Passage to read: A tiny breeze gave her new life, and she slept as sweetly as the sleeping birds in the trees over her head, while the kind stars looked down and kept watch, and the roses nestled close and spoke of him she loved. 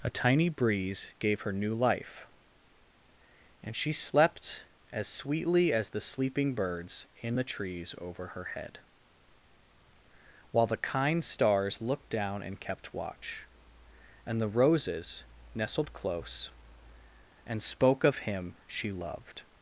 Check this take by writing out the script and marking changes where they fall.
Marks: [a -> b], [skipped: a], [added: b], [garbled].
A tiny breeze gave her new life, and she slept as sweetly as the sleeping birds in the trees over her head, while the kind stars looked down and kept watch, and the roses nestled close and spoke of him she loved.